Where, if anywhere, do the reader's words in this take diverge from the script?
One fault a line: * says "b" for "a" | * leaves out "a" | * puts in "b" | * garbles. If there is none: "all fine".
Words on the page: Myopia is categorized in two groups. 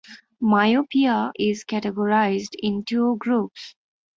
all fine